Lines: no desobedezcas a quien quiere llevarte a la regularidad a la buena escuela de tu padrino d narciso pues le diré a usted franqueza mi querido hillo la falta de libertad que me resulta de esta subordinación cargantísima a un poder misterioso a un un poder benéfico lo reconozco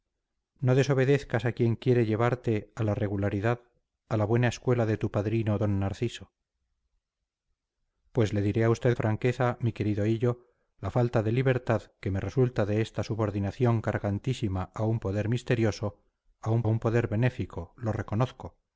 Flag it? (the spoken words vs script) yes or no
no